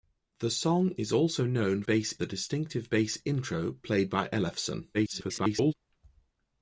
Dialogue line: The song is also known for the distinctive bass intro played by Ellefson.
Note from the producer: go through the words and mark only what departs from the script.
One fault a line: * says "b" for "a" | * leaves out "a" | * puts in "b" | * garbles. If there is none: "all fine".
* says "bass" for "for"
* garbles